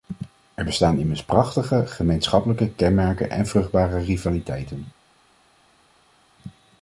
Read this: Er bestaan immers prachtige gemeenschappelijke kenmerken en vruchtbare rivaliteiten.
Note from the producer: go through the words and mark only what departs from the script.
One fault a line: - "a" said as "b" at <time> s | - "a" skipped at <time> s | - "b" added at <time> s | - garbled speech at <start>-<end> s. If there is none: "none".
none